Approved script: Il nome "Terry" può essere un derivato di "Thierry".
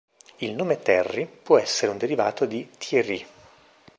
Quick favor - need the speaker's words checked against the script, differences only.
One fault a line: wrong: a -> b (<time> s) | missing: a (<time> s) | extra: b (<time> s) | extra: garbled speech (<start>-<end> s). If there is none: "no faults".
no faults